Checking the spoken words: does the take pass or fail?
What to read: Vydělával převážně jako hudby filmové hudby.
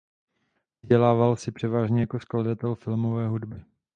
fail